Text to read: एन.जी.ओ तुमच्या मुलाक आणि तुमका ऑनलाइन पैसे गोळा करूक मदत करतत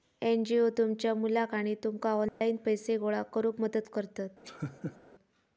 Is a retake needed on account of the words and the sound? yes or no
yes